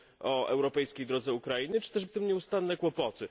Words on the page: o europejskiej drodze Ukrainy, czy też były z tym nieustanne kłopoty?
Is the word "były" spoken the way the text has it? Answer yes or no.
no